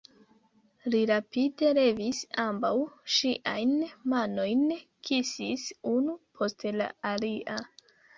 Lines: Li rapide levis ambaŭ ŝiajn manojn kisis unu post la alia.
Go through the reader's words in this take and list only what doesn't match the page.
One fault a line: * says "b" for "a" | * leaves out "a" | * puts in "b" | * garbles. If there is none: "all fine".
all fine